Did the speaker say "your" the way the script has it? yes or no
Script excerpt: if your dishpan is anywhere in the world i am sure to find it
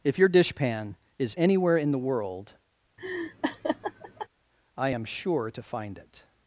yes